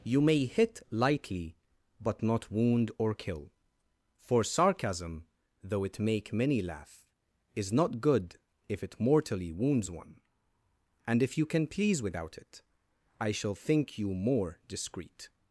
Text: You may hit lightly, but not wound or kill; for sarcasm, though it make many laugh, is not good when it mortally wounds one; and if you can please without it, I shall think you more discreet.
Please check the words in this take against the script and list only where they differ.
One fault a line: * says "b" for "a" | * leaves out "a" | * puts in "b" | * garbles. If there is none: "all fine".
* says "if" for "when"